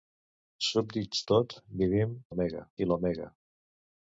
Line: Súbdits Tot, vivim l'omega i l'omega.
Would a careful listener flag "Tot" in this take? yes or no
no